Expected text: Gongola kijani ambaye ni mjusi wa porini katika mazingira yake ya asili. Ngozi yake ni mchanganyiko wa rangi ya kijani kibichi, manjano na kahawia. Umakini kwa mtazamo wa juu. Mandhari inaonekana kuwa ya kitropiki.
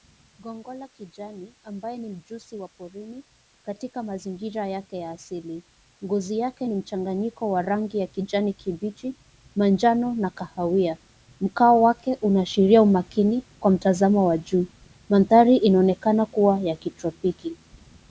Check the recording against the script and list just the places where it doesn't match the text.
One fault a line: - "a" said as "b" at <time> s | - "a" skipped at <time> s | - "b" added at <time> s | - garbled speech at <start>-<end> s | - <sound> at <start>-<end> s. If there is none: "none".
- "Mkao wake unaashiria" added at 11.4 s